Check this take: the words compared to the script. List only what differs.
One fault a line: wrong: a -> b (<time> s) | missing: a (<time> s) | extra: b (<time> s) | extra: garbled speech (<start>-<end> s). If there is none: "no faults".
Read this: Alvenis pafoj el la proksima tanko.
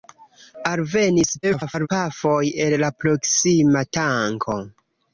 extra: garbled speech (1.4-1.9 s)